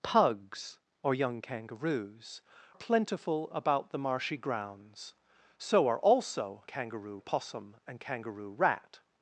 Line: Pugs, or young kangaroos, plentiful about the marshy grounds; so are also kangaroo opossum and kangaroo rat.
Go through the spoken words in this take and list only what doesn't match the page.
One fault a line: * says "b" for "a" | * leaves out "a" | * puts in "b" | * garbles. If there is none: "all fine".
all fine